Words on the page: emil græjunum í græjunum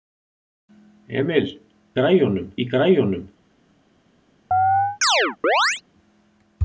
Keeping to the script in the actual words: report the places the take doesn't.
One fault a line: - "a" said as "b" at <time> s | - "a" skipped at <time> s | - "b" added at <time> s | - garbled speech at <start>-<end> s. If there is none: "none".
none